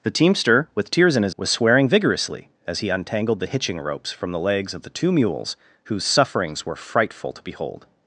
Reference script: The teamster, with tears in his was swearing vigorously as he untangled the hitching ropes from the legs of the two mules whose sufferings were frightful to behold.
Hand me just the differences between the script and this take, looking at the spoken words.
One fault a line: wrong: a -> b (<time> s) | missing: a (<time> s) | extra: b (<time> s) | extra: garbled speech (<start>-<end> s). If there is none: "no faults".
no faults